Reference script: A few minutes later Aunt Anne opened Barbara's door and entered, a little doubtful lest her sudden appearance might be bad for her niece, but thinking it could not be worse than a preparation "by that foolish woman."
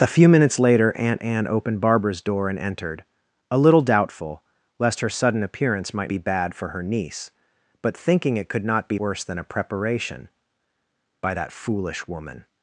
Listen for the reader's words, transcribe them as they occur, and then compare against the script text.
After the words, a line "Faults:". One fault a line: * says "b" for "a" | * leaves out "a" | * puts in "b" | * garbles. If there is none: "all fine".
A few minutes later Aunt Anne opened Barbara's door and entered, a little doubtful lest her sudden appearance might be bad for her niece, but thinking it could not be worse than a preparation "by that foolish woman."
Faults:
all fine